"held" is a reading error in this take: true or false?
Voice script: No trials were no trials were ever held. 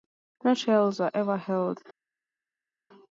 false